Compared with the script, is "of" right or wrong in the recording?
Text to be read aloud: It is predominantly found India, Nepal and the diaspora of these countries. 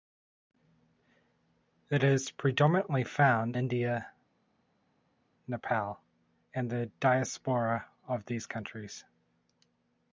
right